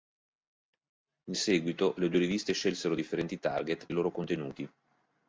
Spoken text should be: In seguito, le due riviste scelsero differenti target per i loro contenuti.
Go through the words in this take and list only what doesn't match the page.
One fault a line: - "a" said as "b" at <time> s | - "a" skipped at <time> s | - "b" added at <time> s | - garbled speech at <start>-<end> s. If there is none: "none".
- "per" skipped at 3.9 s